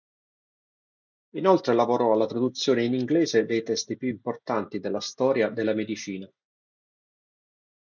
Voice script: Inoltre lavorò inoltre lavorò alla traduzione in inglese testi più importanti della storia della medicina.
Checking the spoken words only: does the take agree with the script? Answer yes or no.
no